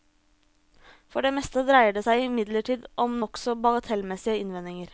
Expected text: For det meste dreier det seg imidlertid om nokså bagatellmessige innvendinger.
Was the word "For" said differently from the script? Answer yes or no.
no